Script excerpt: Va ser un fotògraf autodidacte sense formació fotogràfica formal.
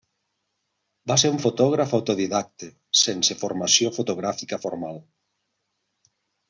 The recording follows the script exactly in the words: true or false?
true